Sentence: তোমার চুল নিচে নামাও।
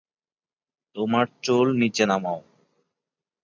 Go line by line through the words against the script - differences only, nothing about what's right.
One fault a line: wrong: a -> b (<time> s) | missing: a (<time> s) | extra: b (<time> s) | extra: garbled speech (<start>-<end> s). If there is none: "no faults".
no faults